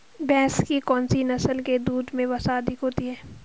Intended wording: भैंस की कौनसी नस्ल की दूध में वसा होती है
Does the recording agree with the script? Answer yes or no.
no